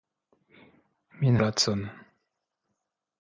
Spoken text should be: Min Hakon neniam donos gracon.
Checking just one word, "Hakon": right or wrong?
wrong